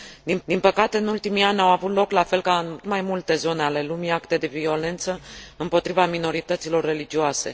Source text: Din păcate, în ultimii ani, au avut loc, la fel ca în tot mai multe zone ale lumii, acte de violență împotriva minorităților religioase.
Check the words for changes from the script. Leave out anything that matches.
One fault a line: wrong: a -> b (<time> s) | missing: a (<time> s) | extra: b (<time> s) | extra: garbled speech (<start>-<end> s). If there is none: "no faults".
extra: din (0.4 s)
missing: tot (2.8 s)